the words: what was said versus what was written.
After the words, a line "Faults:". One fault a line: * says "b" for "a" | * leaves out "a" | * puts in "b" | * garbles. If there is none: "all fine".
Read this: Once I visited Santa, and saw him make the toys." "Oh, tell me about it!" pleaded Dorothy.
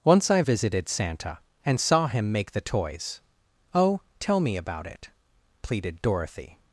Once I visited Santa, and saw him make the toys." "Oh, tell me about it!" pleaded Dorothy.
Faults:
all fine